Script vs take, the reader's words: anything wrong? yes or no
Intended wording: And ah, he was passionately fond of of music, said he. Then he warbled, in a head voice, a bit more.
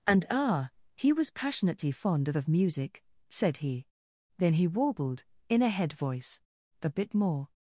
no